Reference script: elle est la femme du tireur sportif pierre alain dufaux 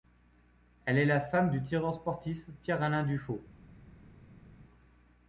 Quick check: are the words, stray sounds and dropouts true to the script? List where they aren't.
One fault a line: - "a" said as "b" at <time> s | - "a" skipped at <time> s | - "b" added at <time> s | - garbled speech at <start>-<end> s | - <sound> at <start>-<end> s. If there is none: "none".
none